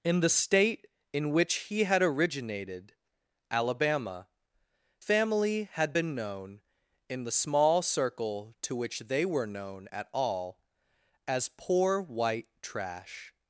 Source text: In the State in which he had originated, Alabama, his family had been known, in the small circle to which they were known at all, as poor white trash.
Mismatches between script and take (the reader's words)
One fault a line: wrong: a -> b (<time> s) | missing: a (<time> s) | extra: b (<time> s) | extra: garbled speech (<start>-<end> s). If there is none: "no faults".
missing: his (4.3 s)